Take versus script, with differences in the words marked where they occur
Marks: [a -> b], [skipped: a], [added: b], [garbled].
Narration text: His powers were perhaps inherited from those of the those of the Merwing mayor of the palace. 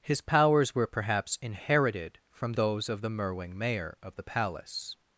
His powers were perhaps inherited from those of the [skipped: those of the] Merwing mayor of the palace.